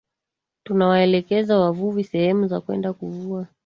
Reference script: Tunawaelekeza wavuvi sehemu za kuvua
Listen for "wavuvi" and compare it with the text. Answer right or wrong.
right